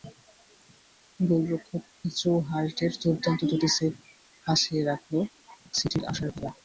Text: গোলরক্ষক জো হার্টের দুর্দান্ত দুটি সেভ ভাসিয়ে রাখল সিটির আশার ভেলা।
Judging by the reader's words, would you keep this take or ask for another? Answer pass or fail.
pass